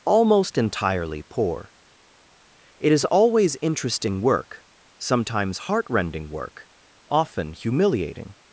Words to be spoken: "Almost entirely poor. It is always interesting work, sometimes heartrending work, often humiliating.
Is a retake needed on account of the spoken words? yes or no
no